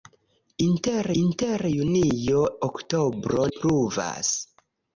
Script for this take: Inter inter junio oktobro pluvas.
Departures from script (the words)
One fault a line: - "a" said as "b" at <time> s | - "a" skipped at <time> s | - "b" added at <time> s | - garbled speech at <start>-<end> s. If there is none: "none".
none